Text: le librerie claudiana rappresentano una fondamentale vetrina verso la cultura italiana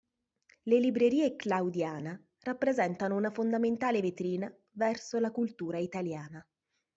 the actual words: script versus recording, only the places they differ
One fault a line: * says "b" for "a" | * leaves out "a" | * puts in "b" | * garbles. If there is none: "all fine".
all fine